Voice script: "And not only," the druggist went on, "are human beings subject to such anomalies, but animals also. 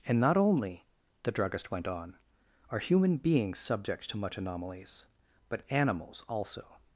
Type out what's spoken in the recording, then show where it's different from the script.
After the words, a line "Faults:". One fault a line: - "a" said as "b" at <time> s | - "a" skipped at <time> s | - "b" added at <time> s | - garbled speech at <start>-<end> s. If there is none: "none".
"And not only," the druggist went on, "are human beings subject to much anomalies, but animals also.
Faults:
- "such" said as "much" at 4.2 s